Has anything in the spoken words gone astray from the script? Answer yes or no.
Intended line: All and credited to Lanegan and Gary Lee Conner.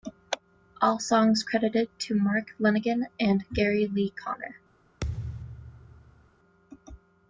yes